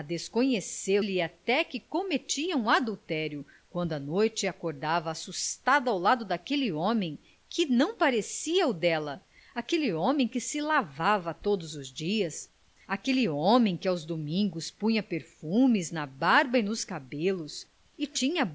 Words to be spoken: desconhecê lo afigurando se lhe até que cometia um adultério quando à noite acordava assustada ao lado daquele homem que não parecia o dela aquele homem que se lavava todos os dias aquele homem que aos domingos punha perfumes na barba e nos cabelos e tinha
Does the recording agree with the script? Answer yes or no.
no